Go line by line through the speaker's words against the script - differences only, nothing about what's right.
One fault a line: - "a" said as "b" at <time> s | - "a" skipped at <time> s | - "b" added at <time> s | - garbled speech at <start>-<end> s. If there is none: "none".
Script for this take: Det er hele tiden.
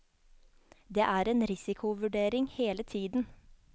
- "en risikovurdering" added at 1.2 s